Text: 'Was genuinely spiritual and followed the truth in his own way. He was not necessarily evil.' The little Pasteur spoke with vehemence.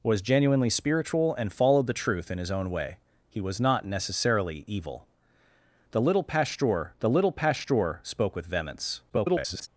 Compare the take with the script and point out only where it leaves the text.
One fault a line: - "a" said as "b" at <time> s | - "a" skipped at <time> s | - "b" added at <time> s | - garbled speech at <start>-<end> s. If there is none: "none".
- "the little Pasteur" added at 7.0 s
- garbled speech at 9.1-9.7 s